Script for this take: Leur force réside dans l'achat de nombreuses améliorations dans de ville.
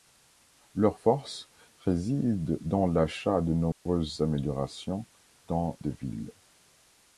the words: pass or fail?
pass